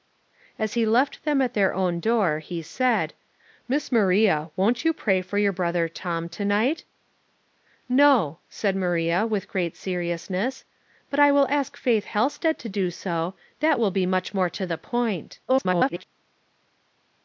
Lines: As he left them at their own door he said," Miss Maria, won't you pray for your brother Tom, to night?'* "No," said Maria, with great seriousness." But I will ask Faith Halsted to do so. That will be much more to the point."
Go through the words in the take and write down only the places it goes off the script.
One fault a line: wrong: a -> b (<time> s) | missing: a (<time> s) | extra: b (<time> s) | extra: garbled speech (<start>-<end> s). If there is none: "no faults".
extra: garbled speech (15.5-16.0 s)